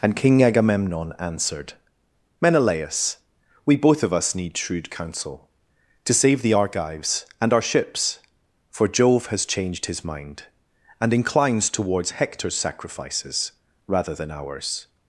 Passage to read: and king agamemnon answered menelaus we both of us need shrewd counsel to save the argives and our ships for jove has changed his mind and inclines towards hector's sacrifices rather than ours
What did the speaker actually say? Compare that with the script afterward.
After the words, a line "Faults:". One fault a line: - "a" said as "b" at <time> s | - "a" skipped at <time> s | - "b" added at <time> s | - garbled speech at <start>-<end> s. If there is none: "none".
and king agamemnon answered menelaus we both of us need shrewd counsel to save the argives and our ships for jove has changed his mind and inclines towards hector's sacrifices rather than ours
Faults:
none